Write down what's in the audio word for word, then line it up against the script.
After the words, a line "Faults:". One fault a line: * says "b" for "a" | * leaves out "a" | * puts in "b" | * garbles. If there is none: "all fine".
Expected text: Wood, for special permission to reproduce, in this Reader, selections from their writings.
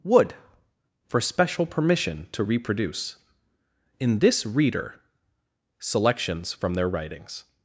Wood, for special permission to reproduce, in this Reader, selections from their writings.
Faults:
all fine